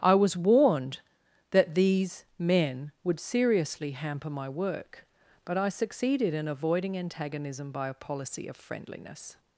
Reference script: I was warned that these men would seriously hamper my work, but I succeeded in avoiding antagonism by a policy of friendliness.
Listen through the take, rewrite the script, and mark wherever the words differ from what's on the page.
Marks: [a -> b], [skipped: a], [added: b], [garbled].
I was warned that these men would seriously hamper my work, but I succeeded in avoiding antagonism by a policy of friendliness.